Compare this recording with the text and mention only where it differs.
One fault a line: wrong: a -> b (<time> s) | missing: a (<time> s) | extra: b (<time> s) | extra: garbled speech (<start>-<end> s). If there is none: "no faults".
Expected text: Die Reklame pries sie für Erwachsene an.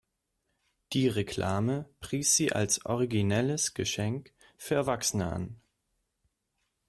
extra: als originelles Geschenk (2.5 s)